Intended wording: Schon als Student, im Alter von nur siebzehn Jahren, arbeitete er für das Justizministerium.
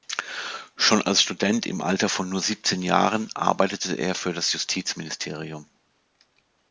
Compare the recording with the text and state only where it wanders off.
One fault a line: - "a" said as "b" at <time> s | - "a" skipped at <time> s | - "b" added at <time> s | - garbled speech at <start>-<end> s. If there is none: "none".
none